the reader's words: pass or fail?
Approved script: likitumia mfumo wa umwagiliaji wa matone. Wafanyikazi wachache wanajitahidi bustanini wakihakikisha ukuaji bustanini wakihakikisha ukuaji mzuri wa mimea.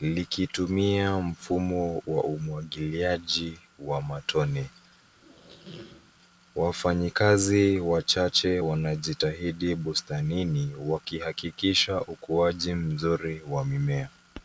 fail